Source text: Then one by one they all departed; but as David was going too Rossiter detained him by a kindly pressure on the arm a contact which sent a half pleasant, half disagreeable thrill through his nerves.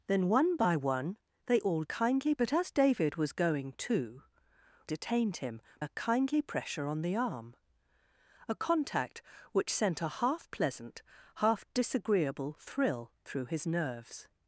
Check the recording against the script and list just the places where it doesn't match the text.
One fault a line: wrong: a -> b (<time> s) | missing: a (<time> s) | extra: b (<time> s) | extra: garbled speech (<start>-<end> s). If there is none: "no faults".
wrong: departed -> kindly (1.8 s)
missing: Rossiter (4.2 s)
missing: by (5.6 s)